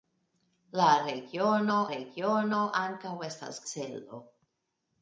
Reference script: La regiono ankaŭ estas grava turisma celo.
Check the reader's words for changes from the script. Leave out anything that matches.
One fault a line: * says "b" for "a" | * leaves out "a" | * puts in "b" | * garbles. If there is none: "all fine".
* puts in "regiono"
* leaves out "grava turisma"